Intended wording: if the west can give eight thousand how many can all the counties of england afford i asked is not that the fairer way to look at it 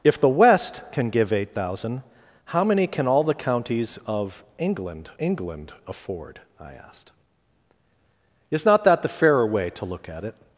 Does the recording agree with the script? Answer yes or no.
no